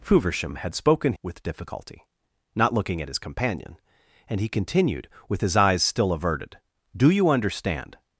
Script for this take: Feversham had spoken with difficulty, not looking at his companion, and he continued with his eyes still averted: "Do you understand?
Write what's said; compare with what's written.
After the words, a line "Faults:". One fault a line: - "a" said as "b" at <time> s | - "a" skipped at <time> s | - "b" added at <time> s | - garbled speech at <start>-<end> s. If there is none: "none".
Feversham had spoken with difficulty, not looking at his companion, and he continued with his eyes still averted: "Do you understand?
Faults:
none